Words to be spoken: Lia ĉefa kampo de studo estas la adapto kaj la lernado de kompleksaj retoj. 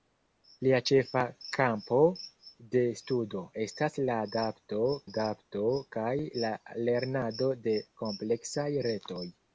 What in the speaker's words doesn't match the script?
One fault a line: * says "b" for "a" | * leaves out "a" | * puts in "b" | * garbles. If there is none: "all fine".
* puts in "adapto"